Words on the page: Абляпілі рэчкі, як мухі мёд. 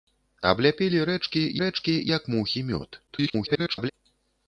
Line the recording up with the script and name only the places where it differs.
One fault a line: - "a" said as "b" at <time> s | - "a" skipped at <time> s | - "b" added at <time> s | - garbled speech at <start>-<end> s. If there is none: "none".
- "рэчкі" added at 1.6 s
- garbled speech at 3.1-3.9 s